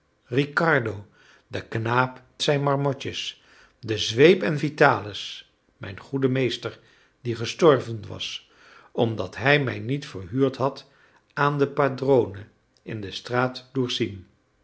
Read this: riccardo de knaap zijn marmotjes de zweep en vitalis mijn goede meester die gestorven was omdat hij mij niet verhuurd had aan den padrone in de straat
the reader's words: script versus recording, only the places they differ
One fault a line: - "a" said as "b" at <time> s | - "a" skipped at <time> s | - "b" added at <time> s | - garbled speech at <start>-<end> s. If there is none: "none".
none